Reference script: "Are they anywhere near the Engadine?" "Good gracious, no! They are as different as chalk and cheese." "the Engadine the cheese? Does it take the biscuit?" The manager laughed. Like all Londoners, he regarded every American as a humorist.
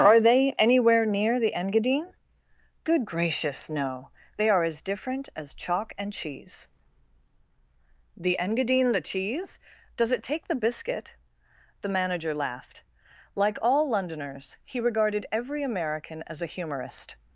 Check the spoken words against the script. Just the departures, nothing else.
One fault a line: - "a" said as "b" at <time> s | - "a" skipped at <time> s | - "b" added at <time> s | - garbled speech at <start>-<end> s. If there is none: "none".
none